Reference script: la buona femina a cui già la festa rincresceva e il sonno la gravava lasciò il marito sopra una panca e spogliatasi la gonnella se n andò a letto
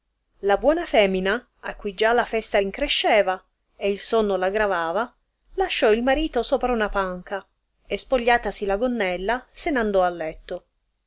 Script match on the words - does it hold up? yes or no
yes